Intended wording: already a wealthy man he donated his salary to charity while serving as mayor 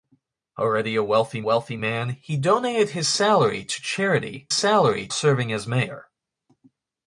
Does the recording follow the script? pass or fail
fail